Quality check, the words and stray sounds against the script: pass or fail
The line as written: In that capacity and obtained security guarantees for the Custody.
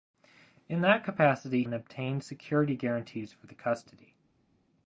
pass